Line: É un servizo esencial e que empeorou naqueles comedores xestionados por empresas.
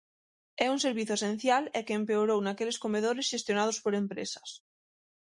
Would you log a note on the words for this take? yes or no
no